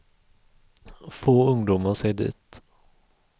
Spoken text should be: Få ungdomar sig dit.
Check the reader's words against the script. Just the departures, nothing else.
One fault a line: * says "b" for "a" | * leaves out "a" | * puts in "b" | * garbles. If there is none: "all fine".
all fine